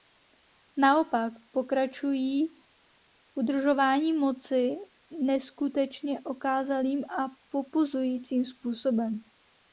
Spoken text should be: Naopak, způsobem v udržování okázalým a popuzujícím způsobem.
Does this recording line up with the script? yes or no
no